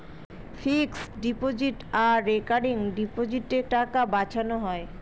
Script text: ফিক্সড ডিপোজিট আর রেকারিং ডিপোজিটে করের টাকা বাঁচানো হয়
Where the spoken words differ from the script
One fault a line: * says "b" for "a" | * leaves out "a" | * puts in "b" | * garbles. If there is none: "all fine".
* leaves out "করের"